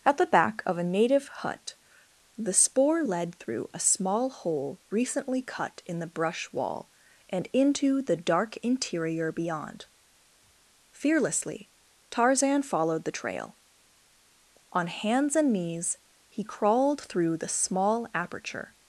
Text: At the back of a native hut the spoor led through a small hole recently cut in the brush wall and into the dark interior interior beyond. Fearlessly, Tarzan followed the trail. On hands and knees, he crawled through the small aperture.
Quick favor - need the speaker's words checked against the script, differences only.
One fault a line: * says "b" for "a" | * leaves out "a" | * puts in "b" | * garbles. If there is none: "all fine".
* leaves out "interior"